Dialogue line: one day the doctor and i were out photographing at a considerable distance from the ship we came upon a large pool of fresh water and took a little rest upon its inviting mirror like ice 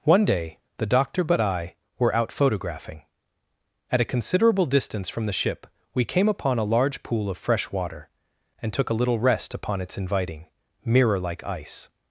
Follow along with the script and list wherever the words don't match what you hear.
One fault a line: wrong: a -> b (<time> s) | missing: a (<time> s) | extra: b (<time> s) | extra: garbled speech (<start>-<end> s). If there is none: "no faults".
wrong: and -> but (1.2 s)